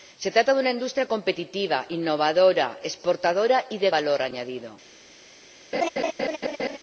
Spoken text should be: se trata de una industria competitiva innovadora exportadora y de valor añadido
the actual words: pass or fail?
pass